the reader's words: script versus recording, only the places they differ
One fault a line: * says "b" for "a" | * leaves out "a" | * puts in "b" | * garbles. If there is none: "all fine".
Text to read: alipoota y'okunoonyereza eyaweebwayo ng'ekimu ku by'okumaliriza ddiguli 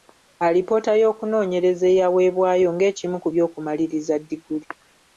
all fine